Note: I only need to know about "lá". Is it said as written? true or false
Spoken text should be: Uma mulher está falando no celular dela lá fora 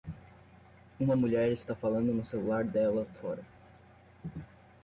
false